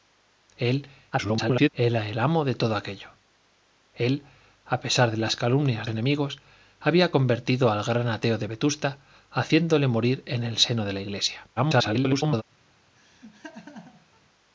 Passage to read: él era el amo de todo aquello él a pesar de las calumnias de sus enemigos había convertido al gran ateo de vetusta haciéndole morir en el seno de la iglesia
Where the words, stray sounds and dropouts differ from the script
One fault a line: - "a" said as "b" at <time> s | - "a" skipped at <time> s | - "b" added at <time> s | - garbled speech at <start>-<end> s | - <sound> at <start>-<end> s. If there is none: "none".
- garbled speech at 1.1-1.7 s
- "de sus" skipped at 5.9 s
- garbled speech at 11.6-12.4 s
- laugh at 13.0-14.2 s